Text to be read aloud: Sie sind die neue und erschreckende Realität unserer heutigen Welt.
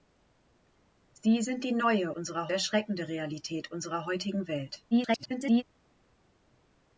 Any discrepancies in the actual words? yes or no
yes